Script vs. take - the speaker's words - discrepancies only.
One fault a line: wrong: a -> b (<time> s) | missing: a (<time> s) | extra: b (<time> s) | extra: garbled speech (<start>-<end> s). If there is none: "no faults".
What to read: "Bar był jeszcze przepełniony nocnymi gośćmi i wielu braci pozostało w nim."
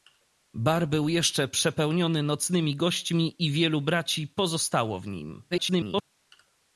extra: garbled speech (5.5-6.0 s)